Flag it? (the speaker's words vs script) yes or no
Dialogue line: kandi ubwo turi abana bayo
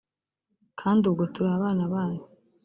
no